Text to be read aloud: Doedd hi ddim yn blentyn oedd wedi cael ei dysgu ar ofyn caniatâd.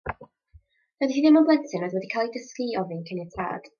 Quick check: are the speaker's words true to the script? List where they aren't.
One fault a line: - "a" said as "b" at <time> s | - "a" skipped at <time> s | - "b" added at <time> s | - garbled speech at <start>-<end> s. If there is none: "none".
- "ar" said as "i" at 2.7 s